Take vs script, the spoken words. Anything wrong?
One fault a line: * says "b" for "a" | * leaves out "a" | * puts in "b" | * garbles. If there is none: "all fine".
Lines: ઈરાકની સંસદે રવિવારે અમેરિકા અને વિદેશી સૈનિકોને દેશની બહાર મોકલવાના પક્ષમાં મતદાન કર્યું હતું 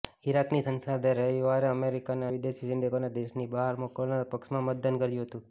all fine